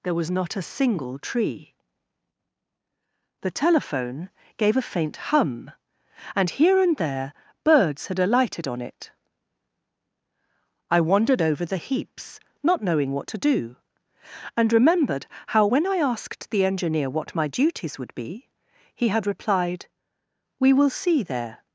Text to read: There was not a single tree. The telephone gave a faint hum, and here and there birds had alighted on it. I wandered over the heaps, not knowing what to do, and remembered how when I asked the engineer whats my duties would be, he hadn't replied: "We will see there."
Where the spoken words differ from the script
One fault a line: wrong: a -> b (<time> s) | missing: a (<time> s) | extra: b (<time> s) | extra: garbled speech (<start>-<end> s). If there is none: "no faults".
wrong: whats -> what (17.1 s)
wrong: hadn't -> had (19.1 s)